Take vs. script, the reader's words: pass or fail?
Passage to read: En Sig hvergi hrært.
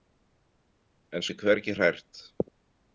pass